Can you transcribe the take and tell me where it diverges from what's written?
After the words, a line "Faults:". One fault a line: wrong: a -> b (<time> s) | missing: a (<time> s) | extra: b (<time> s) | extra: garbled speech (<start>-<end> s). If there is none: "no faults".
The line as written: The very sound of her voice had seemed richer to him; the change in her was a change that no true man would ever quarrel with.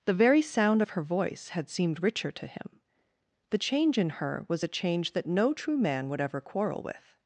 The very sound of her voice had seemed richer to him; the change in her was a change that no true man would ever quarrel with.
Faults:
no faults